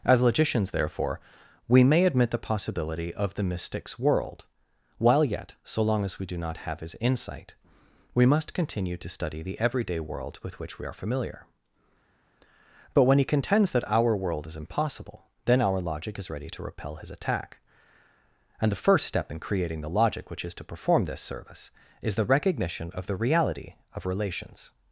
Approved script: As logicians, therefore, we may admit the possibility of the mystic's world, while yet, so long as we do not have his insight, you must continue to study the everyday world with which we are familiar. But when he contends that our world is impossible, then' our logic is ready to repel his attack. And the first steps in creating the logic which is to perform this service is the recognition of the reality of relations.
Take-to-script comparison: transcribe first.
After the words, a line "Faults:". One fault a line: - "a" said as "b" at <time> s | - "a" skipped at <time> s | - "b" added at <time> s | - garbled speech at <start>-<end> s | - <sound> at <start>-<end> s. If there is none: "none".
As logicians, therefore, we may admit the possibility of the mystic's world, while yet, so long as we do not have his insight, we must continue to study the everyday world with which we are familiar. But when he contends that our world is impossible, then' our logic is ready to repel his attack. And the first step in creating the logic which is to perform this service is the recognition of the reality of relations.
Faults:
- "you" said as "we" at 8.1 s
- "steps" said as "step" at 19.0 s